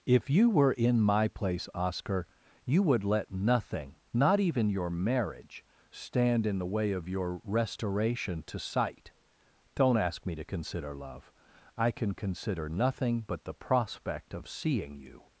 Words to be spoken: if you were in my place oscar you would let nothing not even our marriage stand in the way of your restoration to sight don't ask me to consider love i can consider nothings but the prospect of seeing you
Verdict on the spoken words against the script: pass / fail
fail